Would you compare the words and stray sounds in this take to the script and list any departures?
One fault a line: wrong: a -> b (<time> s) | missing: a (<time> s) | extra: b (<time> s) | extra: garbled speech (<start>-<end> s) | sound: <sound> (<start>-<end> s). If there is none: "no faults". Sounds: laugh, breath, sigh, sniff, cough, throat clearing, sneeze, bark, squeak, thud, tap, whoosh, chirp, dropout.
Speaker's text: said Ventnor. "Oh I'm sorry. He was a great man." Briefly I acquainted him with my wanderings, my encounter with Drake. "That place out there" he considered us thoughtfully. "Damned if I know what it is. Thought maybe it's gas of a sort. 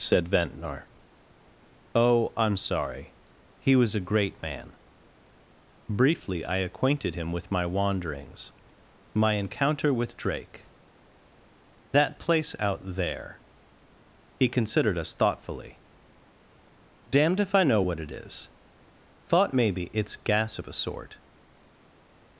no faults